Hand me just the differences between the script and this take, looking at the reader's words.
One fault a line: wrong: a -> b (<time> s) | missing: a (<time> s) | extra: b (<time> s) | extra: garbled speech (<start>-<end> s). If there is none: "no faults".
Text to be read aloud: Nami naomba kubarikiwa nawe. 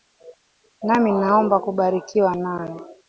no faults